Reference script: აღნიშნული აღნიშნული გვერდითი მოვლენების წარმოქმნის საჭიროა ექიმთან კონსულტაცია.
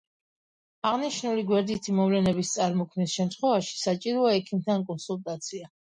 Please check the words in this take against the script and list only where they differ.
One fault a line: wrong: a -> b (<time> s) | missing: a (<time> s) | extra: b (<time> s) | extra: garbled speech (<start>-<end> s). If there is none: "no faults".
missing: აღნიშნული (1.4 s)
extra: შემთხვევაში (3.2 s)